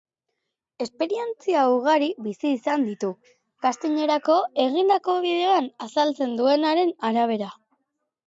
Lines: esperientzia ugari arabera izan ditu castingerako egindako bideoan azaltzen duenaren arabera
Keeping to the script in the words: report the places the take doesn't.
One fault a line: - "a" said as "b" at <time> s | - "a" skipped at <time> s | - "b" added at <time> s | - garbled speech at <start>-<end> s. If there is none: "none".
- "arabera" said as "bizi" at 2.3 s